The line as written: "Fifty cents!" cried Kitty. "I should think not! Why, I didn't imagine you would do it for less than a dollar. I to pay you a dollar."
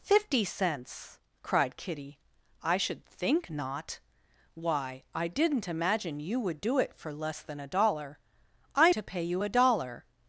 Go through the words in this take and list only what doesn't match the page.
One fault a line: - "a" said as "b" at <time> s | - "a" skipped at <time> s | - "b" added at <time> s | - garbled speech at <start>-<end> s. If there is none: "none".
none